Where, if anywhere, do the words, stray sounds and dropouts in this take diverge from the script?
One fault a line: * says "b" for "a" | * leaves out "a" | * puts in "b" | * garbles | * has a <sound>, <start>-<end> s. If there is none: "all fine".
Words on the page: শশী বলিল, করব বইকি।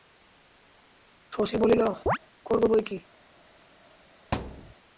* has a chirp, 2.1-2.2 s
* has a thud, 4.3-4.7 s